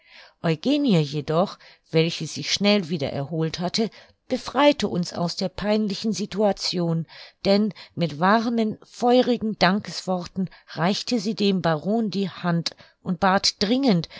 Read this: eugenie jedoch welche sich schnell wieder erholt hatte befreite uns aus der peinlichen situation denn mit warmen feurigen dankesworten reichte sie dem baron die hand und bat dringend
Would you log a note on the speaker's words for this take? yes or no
no